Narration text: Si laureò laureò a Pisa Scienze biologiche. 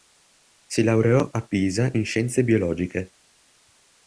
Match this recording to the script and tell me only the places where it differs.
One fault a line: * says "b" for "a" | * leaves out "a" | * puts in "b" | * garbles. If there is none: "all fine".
* leaves out "laureò"
* puts in "in"